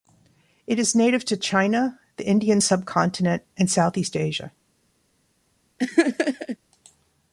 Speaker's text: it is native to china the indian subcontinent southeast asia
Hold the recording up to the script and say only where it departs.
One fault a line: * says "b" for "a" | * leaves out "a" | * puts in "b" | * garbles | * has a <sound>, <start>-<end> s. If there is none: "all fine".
* puts in "and"
* has a laugh, 5.8-6.6 s